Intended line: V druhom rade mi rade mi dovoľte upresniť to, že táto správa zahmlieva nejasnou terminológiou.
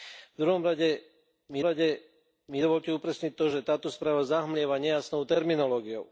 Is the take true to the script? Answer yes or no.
yes